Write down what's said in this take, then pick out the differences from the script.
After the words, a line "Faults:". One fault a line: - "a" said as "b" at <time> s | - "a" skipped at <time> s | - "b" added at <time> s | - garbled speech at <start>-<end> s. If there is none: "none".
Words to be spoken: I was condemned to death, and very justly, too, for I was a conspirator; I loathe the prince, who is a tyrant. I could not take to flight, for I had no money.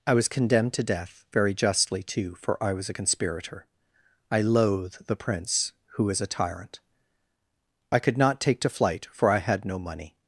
I was condemned to death, very justly, too, for I was a conspirator; I loathe the prince, who is a tyrant. I could not take to flight, for I had no money.
Faults:
- "and" skipped at 1.2 s